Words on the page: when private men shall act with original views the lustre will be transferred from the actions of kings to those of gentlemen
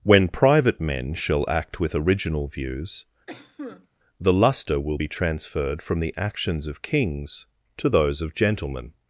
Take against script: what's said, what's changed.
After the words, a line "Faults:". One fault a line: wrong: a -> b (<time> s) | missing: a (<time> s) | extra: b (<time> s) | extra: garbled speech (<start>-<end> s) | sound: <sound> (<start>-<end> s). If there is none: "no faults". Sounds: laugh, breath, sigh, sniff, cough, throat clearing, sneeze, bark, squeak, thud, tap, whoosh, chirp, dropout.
when private men shall act with original views the lustre will be transferred from the actions of kings to those of gentlemen
Faults:
sound: cough (3.3-3.9 s)